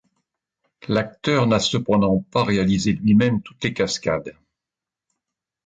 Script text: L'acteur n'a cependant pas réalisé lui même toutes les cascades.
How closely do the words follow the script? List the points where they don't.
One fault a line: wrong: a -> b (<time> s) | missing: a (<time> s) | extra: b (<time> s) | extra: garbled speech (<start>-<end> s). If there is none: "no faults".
no faults